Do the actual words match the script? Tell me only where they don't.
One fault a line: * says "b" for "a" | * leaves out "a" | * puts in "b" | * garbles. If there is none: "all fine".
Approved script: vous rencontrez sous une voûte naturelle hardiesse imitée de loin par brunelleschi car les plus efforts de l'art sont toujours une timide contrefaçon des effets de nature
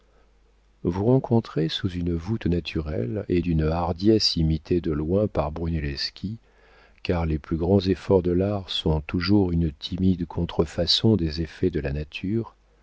* puts in "et d'une"
* puts in "grands"
* puts in "la"